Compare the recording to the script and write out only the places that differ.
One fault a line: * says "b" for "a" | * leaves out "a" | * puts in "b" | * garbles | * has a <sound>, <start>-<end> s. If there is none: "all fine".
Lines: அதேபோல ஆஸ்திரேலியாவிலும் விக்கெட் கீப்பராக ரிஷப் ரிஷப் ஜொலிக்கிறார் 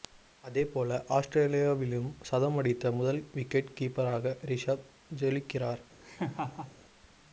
* puts in "சதம் அடித்த முதல்"
* leaves out "ரிஷப்"
* has a laugh, 6.0-6.8 s